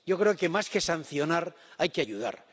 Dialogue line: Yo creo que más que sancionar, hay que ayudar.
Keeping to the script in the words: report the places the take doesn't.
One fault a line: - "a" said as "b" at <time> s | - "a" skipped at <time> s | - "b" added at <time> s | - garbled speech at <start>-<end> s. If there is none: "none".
none